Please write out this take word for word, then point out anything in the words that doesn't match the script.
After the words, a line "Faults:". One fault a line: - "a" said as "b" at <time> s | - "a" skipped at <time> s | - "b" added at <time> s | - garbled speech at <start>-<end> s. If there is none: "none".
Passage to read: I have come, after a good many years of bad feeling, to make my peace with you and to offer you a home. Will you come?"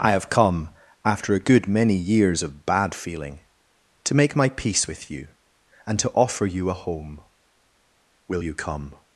I have come, after a good many years of bad feeling, to make my peace with you and to offer you a home. Will you come?"
Faults:
none